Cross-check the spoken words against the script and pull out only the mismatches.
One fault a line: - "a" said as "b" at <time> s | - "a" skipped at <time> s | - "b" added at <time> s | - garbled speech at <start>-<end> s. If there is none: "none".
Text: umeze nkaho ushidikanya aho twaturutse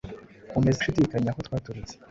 - "nkaho" skipped at 0.8 s